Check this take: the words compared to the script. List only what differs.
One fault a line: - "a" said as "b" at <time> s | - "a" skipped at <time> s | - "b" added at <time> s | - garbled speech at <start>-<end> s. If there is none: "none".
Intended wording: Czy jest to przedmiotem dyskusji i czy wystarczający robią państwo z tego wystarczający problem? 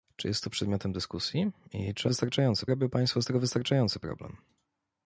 none